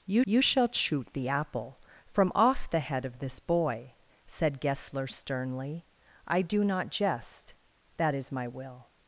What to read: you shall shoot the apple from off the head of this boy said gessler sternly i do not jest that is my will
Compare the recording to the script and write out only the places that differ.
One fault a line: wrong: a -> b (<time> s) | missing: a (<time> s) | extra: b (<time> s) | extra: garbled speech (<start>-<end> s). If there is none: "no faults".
extra: you (0.2 s)